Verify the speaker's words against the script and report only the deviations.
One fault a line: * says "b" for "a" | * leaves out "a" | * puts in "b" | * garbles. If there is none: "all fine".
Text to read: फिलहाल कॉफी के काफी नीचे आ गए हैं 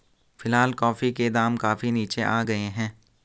* puts in "दाम"